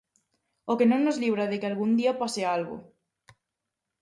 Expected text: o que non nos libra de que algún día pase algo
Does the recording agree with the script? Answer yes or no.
yes